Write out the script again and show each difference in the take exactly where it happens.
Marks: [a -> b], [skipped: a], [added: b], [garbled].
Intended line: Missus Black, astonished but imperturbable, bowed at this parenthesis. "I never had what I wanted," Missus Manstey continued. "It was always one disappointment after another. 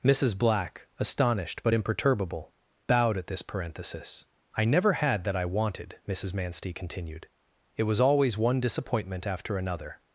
Missus Black, astonished but imperturbable, bowed at this parenthesis. "I never had [what -> that] I wanted," Missus Manstey continued. "It was always one disappointment after another.